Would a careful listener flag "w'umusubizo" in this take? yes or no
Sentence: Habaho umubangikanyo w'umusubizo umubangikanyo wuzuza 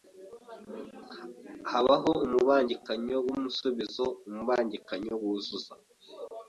no